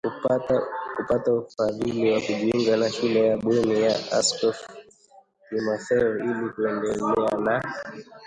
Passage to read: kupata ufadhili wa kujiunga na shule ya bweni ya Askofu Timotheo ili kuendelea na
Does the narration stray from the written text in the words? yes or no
no